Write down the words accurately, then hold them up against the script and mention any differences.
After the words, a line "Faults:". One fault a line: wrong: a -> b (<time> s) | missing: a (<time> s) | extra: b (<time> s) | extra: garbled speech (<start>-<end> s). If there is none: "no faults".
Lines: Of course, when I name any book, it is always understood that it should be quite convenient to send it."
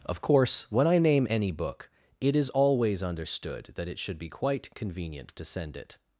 Of course, when I name any book, it is always understood that it should be quite convenient to send it."
Faults:
no faults